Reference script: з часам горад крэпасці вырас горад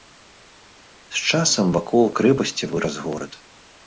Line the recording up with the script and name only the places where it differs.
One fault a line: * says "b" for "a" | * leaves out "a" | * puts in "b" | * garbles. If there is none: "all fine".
* says "вакол" for "горад"